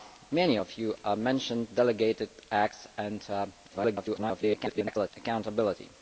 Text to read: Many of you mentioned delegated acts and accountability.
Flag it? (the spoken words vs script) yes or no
yes